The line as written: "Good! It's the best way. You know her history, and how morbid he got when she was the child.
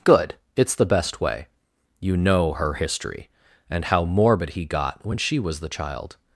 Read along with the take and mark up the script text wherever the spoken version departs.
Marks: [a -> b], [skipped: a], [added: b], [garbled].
"Good! It's the best way. You know her history, and how morbid he got when she was the child.